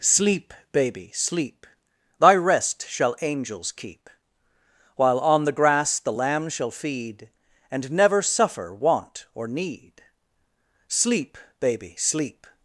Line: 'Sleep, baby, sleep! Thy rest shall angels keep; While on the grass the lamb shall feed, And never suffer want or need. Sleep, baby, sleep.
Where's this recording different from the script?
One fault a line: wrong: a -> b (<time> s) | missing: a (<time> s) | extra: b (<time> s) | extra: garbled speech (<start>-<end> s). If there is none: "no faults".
no faults